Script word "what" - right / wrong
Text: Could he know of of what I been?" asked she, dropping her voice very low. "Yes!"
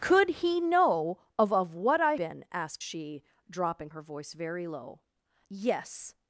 right